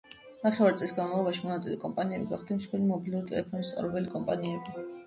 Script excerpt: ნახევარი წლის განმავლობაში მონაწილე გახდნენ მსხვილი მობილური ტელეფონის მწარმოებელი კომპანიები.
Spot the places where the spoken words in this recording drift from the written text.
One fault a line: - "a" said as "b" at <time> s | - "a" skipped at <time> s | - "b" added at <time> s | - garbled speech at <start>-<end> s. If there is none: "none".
- "კომპანიები" added at 1.9 s